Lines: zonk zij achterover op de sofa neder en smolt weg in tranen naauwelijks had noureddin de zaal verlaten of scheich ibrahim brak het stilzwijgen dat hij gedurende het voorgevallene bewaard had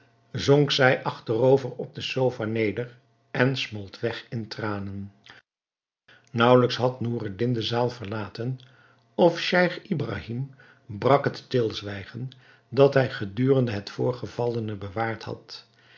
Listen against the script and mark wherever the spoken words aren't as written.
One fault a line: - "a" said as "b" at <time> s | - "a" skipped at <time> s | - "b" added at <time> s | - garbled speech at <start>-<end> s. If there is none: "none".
none